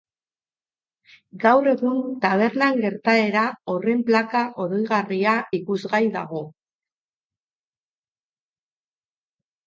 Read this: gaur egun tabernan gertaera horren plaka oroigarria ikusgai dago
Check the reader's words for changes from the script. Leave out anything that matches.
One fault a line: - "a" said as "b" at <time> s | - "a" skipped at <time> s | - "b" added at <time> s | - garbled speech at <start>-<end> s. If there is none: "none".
none